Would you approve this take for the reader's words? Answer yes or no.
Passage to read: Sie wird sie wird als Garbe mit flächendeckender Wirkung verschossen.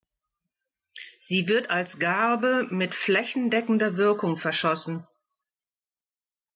no